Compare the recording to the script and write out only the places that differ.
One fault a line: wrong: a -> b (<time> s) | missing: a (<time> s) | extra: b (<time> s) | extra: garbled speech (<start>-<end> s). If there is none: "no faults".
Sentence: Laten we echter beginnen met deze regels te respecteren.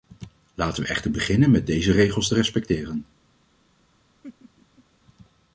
no faults